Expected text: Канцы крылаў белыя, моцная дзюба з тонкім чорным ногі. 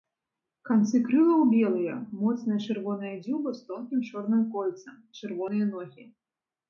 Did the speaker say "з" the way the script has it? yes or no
yes